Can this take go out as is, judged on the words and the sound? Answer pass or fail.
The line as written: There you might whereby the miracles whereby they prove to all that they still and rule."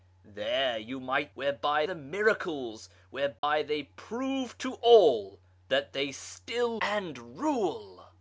fail